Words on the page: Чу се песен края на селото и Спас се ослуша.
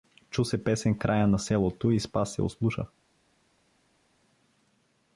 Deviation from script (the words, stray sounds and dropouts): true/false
false